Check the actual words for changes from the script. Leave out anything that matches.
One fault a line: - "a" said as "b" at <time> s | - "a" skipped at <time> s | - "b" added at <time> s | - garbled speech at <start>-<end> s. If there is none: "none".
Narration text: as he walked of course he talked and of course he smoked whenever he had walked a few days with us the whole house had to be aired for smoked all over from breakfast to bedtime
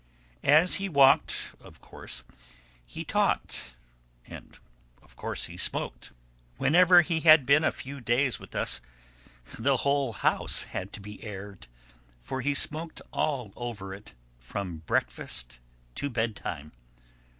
- "walked" said as "been" at 7.5 s
- "he" added at 12.4 s
- "it" added at 13.9 s